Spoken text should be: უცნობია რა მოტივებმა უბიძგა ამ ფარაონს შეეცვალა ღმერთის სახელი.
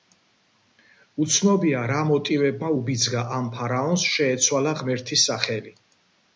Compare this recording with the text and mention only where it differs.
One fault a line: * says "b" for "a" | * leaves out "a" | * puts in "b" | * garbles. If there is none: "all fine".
all fine